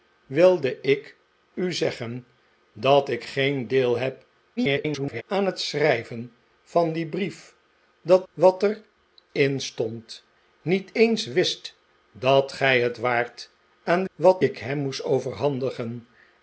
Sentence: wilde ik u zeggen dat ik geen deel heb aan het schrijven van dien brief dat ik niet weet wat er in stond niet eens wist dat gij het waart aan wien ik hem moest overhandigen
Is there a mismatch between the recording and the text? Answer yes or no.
yes